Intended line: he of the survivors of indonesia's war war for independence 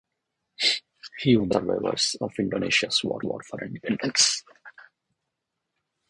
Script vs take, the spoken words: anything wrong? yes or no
no